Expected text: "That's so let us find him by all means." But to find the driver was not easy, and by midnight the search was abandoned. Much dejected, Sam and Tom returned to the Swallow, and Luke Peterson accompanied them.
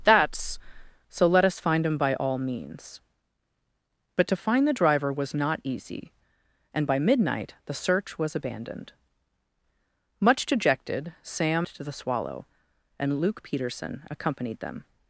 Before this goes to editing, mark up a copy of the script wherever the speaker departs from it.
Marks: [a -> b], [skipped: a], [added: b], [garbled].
"That's so let us find him by all means." But to find the driver was not easy, and by midnight the search was abandoned. Much dejected, Sam [skipped: and Tom returned] to the Swallow, and Luke Peterson accompanied them.